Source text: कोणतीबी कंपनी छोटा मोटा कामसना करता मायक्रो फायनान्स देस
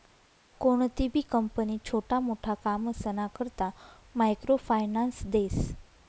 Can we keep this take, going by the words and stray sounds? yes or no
yes